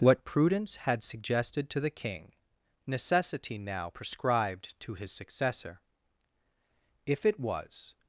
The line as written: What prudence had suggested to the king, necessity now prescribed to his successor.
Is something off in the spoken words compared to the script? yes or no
yes